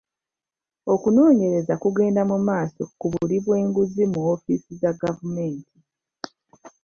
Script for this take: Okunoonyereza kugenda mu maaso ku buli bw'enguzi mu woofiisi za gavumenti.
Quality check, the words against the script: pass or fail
pass